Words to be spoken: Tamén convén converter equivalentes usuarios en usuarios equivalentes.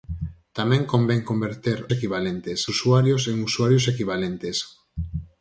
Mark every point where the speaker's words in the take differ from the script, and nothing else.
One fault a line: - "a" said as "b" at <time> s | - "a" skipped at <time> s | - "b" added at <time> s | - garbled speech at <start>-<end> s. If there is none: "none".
none